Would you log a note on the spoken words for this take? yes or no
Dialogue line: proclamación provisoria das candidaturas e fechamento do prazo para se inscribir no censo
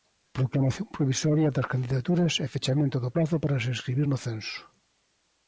no